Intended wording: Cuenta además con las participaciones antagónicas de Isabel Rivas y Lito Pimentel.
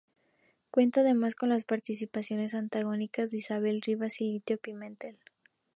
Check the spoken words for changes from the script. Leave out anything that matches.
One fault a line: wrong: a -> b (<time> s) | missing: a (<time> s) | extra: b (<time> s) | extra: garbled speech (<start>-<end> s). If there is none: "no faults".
no faults